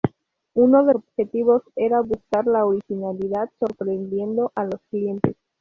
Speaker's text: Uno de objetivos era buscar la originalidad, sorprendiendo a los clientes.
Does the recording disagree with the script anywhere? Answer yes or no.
no